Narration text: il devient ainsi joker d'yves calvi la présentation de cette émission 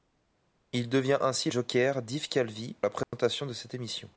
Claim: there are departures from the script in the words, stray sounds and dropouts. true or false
true